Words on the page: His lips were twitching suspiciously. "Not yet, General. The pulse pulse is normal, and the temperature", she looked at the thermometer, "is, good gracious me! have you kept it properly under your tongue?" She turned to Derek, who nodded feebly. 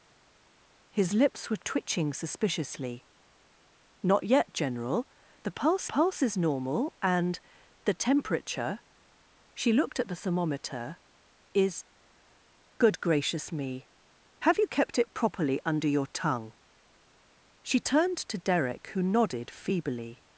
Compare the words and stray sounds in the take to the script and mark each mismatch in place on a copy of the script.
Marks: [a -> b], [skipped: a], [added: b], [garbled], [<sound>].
His lips were twitching suspiciously. "Not yet, General. The pulse pulse is normal, and the temperature", she looked at the thermometer, "is, good gracious me! have you kept it properly under your tongue?" She turned to Derek, who nodded feebly.